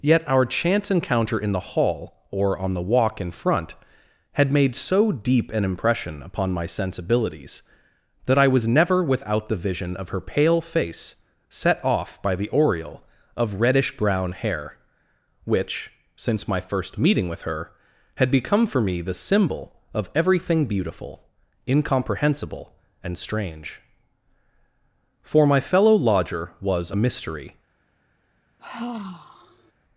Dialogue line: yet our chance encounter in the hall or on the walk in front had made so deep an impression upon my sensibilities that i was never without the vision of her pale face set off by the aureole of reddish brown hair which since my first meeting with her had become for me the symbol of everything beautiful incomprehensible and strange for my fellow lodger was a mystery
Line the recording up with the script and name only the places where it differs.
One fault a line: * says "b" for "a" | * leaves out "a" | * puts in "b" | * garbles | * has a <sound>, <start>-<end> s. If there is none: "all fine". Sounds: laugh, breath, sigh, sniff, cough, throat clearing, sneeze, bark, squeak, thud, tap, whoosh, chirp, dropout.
* has a sigh, 28.6-29.7 s